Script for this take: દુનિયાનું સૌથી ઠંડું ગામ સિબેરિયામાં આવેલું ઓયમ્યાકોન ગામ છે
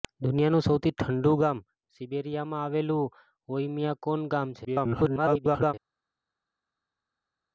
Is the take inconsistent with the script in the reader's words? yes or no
yes